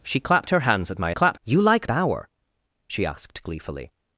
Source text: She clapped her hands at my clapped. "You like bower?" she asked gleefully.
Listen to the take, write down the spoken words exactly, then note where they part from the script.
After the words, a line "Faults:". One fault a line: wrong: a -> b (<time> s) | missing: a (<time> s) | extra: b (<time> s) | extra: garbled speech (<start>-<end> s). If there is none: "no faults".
She clapped her hands at my clapped. "You like bower?" she asked gleefully.
Faults:
no faults